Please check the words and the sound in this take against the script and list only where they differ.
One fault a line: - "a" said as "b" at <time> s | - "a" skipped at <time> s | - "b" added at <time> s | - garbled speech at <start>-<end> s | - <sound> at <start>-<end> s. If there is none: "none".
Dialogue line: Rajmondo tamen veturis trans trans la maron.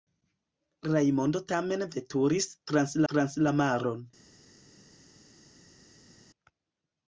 none